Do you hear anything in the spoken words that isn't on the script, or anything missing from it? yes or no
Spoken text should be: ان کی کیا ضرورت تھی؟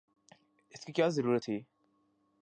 yes